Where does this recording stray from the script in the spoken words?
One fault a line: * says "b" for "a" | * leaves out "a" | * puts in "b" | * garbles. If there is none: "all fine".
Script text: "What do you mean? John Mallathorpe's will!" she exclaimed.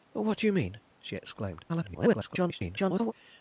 * leaves out "John Mallathorpe's will"
* garbles